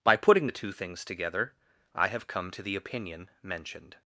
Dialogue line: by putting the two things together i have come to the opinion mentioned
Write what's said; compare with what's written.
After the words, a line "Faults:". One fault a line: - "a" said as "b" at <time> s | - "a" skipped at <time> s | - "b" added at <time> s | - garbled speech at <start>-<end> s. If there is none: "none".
by putting the two things together i have come to the opinion mentioned
Faults:
none